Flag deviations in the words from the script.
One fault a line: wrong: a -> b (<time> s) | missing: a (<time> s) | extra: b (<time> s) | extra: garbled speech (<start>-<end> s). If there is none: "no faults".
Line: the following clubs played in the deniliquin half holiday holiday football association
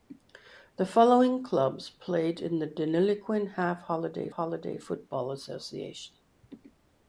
no faults